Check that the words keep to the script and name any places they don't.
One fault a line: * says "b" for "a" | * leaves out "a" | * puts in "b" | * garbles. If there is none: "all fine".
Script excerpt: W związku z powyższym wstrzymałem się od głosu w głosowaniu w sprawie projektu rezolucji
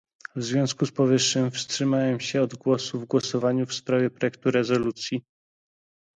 all fine